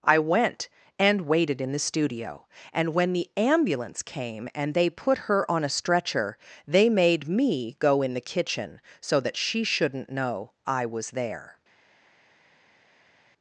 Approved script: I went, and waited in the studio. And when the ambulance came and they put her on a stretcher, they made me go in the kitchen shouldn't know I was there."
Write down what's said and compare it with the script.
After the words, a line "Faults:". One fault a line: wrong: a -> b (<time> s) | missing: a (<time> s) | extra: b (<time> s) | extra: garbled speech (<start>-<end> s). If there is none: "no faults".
I went, and waited in the studio. And when the ambulance came and they put her on a stretcher, they made me go in the kitchen so that she shouldn't know I was there."
Faults:
extra: so that she (9.0 s)